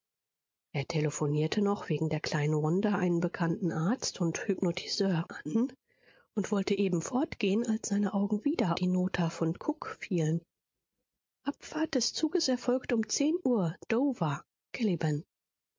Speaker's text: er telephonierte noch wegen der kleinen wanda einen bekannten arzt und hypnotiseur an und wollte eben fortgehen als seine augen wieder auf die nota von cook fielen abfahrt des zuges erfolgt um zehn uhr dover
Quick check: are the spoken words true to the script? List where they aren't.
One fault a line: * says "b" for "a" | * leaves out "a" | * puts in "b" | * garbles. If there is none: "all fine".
* leaves out "auf"